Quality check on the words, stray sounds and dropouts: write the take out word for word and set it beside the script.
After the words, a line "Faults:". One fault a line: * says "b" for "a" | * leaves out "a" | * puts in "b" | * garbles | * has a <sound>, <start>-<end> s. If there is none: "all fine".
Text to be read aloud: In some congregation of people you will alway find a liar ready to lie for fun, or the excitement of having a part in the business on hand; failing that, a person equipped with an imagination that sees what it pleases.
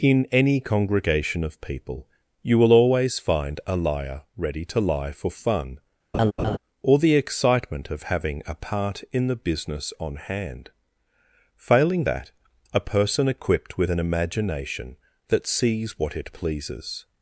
In any congregation of people you will always find a liar ready to lie for fun, or the excitement of having a part in the business on hand; failing that, a person equipped with an imagination that sees what it pleases.
Faults:
* says "any" for "some"
* says "always" for "alway"
* has a laugh, 6.1-6.6 s